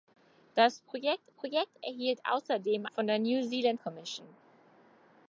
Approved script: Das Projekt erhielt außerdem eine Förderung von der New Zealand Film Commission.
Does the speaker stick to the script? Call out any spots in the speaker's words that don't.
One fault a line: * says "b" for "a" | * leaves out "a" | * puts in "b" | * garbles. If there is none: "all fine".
* puts in "Projekt"
* leaves out "eine Förderung"
* leaves out "Film"